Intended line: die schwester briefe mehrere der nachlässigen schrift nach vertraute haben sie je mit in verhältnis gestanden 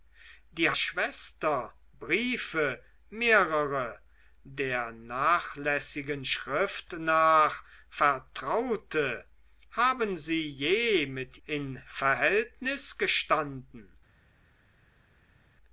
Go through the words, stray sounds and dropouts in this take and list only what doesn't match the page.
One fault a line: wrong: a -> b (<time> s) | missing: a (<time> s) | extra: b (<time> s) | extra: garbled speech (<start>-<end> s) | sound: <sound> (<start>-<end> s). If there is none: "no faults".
no faults